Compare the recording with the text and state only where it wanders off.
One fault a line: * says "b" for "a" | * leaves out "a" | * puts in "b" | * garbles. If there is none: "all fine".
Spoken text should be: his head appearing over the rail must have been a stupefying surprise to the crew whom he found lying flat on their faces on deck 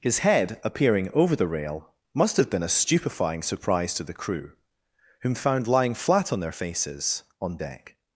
* leaves out "he"